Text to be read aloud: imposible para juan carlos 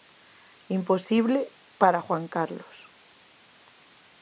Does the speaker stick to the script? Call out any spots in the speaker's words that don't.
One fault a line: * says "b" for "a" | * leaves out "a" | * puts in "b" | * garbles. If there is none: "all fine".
all fine